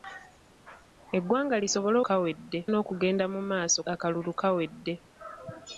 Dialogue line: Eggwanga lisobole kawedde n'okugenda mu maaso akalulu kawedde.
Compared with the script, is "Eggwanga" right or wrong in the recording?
right